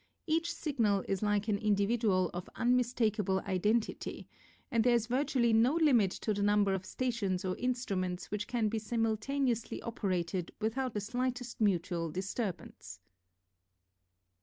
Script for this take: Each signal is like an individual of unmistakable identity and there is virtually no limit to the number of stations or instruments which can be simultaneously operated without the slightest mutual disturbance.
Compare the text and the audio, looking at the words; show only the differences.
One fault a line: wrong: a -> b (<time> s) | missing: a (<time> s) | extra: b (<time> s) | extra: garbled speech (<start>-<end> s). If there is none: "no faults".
no faults